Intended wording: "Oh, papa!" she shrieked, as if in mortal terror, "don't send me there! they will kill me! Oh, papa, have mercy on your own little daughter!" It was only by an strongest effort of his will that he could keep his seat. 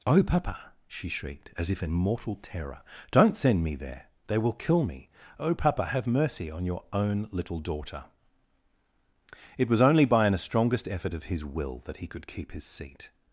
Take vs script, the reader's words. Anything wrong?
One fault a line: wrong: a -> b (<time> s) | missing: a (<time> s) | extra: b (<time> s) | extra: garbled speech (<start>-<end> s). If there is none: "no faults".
no faults